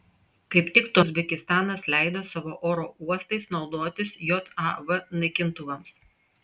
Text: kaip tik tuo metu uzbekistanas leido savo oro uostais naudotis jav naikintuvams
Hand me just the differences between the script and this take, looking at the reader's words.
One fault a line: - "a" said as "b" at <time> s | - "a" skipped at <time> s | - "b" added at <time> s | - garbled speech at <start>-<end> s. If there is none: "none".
- "metu" skipped at 1.0 s